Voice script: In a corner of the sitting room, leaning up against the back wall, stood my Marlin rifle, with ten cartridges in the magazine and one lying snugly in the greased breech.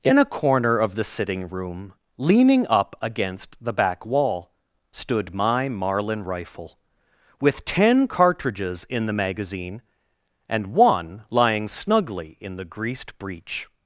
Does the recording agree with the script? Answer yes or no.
yes